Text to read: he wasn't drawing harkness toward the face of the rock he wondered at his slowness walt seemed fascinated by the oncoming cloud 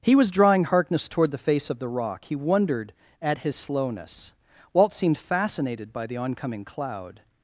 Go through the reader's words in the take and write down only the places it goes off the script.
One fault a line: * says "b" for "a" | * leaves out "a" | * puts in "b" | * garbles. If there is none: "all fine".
* says "was" for "wasn't"